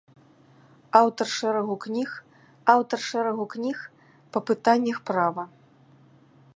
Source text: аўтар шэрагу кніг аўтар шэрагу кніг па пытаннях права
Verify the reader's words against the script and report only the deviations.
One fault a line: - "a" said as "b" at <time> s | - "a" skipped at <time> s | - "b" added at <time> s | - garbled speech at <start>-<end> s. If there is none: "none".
none